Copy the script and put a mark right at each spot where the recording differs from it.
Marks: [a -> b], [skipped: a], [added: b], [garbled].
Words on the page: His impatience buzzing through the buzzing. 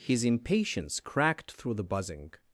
His impatience [buzzing -> cracked] through the buzzing.